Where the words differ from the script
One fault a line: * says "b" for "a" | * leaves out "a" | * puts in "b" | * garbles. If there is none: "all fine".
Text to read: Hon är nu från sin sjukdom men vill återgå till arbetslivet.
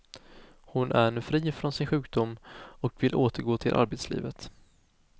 * puts in "fri"
* says "och" for "men"